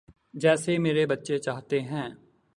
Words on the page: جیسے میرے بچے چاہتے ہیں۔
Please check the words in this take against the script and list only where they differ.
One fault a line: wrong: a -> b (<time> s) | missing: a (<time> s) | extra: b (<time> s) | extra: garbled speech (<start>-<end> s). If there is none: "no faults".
no faults